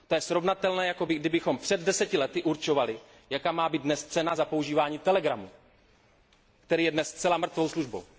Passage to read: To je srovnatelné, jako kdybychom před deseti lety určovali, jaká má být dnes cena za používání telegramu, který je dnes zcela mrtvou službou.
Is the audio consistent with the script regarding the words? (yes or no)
yes